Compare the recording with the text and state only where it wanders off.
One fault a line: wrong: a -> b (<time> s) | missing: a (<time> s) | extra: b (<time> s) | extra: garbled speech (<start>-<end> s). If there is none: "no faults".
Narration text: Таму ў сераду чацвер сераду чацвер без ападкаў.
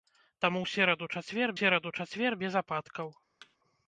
no faults